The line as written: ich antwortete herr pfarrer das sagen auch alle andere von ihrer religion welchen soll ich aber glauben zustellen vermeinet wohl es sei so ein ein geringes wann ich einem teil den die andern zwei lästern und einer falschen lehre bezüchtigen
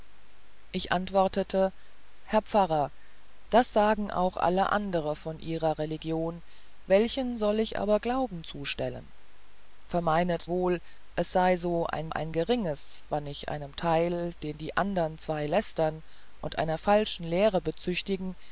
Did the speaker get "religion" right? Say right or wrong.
right